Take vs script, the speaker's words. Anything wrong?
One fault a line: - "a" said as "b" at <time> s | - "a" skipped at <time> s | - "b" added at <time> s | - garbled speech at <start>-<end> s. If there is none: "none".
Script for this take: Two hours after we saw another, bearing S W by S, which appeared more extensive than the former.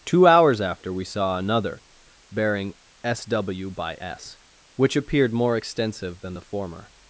none